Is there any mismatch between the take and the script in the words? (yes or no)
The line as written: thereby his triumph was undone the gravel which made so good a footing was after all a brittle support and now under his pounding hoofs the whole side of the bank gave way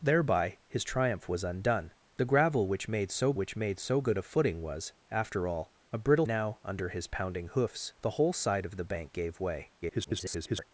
yes